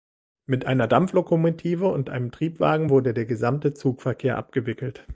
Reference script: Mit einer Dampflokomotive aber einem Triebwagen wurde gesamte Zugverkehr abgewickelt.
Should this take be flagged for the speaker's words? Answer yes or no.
yes